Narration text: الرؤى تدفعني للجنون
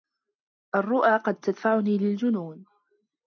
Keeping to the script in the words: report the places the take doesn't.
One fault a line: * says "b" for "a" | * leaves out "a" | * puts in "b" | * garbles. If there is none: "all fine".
* puts in "قد"